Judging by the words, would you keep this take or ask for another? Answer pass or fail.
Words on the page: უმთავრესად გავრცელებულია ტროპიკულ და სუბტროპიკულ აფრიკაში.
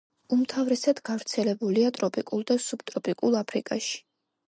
pass